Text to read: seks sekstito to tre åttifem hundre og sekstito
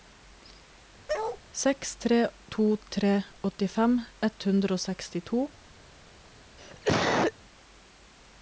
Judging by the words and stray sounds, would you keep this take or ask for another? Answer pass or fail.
fail